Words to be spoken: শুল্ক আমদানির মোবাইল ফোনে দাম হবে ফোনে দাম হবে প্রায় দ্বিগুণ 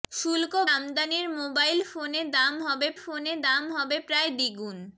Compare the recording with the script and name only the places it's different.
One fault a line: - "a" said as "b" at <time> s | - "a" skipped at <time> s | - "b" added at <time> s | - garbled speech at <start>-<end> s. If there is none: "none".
none